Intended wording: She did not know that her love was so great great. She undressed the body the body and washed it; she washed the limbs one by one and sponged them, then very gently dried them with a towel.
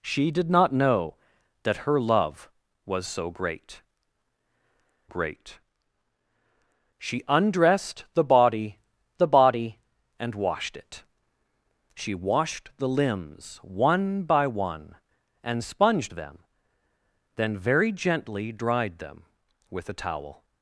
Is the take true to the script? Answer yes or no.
yes